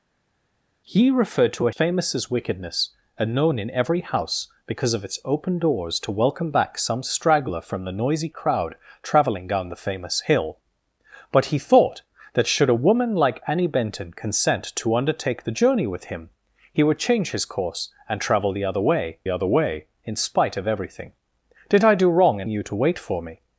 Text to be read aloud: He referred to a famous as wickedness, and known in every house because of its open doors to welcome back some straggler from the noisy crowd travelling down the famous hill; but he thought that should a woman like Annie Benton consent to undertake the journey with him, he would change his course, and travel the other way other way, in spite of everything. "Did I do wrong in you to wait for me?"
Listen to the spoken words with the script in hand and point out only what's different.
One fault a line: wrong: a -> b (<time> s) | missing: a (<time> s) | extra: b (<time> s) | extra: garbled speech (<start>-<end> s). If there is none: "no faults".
no faults